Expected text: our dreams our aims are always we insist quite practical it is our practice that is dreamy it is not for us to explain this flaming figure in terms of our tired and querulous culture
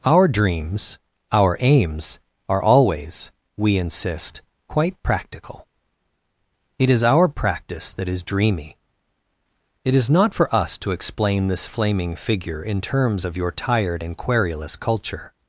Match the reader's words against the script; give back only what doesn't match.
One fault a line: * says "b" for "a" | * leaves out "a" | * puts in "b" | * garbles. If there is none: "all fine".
* says "your" for "our"